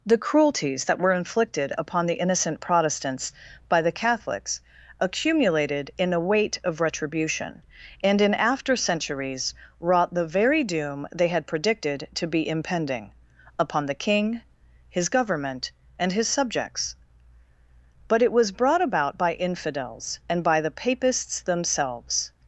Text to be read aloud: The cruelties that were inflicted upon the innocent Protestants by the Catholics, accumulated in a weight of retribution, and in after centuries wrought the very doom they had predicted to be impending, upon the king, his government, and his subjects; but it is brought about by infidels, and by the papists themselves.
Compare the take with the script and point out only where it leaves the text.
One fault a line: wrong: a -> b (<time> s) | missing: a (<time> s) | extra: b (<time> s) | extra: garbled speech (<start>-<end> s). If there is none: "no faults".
wrong: is -> was (18.3 s)